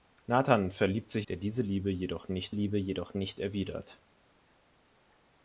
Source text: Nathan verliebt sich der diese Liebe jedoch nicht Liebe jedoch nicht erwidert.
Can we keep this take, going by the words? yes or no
yes